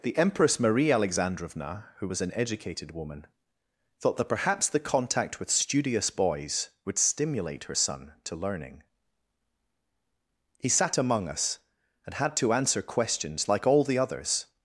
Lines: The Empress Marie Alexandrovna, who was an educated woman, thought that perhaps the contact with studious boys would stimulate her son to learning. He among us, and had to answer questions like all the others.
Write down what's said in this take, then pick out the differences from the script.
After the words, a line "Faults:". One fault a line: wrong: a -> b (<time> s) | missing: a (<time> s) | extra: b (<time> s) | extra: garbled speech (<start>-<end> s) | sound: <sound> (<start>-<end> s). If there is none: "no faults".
The Empress Marie Alexandrovna, who was an educated woman, thought that perhaps the contact with studious boys would stimulate her son to learning. He sat among us, and had to answer questions like all the others.
Faults:
extra: sat (10.7 s)